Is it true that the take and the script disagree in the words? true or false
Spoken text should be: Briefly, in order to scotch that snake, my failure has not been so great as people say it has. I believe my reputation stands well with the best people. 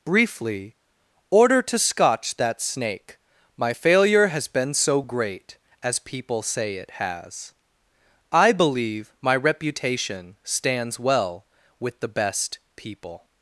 true